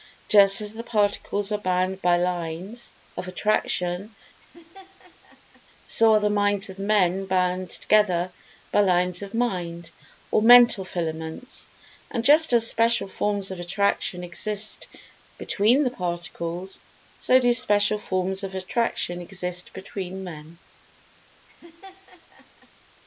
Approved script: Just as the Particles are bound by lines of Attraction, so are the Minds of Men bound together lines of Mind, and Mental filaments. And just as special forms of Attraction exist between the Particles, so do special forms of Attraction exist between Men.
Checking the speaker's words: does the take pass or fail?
fail